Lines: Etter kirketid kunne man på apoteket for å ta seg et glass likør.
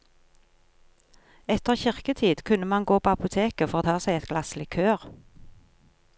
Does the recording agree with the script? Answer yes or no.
no